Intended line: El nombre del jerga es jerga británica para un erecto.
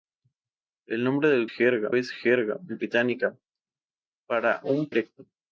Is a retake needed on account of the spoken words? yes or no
no